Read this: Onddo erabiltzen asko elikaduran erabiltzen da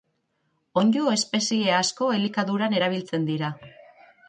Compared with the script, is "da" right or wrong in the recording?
wrong